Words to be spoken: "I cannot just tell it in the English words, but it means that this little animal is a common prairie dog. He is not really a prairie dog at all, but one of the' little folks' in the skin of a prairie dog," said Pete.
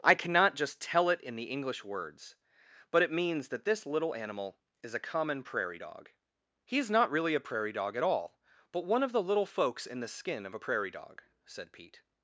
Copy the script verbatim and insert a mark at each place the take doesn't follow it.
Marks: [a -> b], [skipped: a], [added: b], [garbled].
"I cannot just tell it in the English words, but it means that this little animal is a common prairie dog. He is not really a prairie dog at all, but one of the' little folks' in the skin of a prairie dog," said Pete.